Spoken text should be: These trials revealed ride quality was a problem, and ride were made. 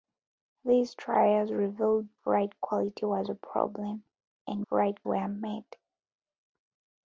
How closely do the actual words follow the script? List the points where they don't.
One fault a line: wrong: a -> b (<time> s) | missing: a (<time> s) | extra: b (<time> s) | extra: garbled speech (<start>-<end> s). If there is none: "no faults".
no faults